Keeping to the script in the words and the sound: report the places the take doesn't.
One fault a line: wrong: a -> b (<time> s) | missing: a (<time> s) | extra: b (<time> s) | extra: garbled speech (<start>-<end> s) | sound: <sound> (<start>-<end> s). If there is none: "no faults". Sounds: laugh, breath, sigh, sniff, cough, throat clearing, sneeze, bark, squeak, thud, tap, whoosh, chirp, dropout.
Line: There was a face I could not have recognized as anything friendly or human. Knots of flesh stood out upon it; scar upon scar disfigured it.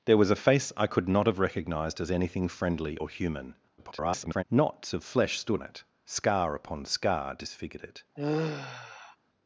extra: garbled speech (3.8-4.4 s)
missing: out upon (5.6 s)
sound: sigh (8.2-9.2 s)